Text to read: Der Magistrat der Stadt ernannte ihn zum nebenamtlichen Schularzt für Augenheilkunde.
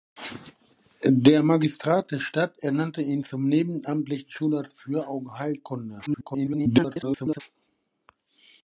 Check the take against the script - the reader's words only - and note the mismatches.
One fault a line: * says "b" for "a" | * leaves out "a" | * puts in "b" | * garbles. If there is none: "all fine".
* garbles